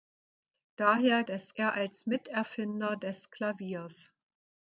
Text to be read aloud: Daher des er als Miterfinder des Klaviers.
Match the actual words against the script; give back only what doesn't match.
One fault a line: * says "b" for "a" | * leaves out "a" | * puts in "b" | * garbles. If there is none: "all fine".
all fine